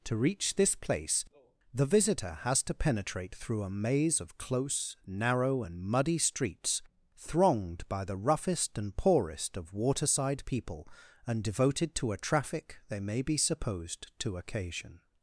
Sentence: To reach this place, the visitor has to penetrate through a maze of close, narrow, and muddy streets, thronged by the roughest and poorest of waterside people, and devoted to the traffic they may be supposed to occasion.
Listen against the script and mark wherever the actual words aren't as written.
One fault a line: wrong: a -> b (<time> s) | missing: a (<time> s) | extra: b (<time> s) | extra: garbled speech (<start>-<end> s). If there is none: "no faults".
wrong: the -> a (12.1 s)